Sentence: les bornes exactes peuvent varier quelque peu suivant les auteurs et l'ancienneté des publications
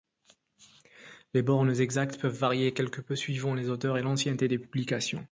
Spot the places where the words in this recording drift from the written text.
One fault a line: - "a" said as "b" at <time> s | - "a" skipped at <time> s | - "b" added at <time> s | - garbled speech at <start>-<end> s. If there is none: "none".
none